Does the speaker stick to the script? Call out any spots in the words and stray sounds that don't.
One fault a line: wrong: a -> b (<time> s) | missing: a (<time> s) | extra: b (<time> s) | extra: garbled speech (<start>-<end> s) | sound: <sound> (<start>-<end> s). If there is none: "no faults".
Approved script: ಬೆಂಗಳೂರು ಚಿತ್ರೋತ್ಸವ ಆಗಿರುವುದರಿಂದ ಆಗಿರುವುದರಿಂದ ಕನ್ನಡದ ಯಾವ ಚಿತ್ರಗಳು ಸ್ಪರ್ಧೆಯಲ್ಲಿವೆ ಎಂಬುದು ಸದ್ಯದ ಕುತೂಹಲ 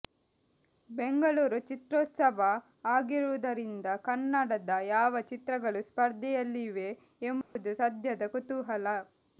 missing: ಆಗಿರುವುದರಿಂದ (3.9 s)
sound: dropout (7.4-7.6 s)